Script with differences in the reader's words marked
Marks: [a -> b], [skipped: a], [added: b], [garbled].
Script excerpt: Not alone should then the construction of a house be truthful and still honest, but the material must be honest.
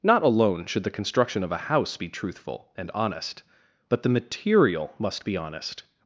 Not alone should [skipped: then] the construction of a house be truthful and [skipped: still] honest, but the material must be honest.